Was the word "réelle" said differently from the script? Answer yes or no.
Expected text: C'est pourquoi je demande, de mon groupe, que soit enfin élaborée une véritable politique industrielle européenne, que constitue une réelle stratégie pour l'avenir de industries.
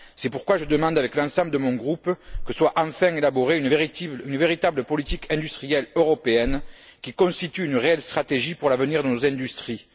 no